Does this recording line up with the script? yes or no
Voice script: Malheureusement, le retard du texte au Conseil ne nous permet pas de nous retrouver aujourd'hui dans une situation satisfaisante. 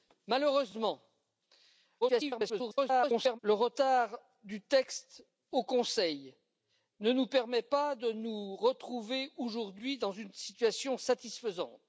no